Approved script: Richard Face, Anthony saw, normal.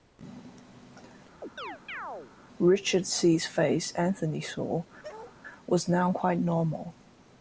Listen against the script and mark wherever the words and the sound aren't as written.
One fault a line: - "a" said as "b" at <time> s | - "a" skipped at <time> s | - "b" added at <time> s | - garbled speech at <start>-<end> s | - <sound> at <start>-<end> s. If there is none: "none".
- chirp at 1.4-2.3 s
- "C.'s" added at 3.1 s
- bark at 5.0-5.4 s
- "was now quite" added at 5.6 s